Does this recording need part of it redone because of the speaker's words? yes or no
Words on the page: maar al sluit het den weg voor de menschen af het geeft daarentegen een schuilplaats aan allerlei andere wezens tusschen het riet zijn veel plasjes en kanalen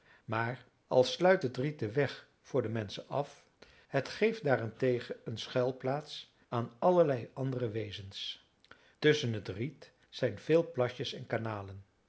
yes